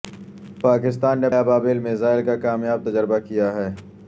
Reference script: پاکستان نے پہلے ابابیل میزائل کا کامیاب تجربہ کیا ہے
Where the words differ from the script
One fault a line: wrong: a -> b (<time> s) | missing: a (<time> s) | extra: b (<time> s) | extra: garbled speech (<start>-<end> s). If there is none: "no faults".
missing: پہلے (1.3 s)